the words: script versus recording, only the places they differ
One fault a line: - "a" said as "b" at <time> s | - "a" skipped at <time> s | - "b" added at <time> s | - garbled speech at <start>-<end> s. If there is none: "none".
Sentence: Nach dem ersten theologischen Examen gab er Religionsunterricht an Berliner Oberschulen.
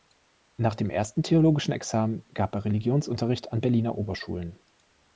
none